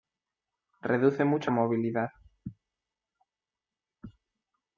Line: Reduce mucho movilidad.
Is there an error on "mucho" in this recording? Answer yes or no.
no